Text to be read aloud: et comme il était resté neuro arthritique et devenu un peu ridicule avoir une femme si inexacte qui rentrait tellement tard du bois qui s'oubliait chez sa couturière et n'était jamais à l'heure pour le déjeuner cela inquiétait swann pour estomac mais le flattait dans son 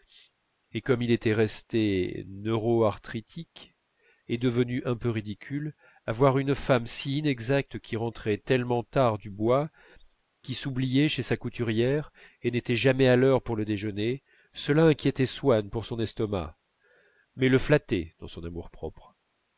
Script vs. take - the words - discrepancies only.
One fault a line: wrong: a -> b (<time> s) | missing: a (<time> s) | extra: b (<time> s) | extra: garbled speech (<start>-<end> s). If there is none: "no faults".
extra: son (15.8 s)